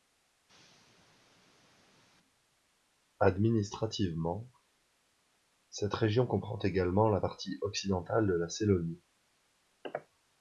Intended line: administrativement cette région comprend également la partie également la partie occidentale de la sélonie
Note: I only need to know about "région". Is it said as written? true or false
true